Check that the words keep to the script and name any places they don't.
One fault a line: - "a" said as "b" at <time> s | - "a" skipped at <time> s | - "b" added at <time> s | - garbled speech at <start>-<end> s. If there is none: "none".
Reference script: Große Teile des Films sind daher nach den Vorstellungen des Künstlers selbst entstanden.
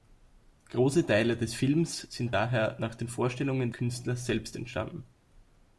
- "des" skipped at 3.7 s